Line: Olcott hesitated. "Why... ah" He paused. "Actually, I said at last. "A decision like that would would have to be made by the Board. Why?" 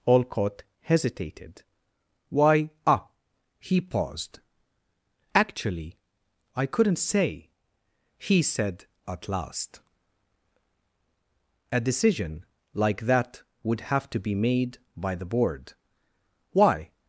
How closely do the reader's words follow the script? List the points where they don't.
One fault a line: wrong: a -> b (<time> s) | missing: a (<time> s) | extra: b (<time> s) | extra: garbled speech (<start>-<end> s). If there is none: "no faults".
extra: couldn't say he (6.7 s)
missing: would (13.8 s)